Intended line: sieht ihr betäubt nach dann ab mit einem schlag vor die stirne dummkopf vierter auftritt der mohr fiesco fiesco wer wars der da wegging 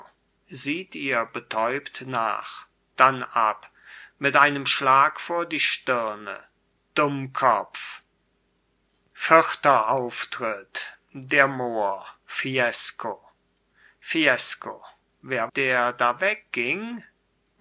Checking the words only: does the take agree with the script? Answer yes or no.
no